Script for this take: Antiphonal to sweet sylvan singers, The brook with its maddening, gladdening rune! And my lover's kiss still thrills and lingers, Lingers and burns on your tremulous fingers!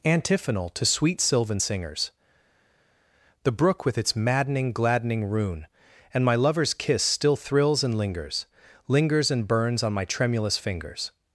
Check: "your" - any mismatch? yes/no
yes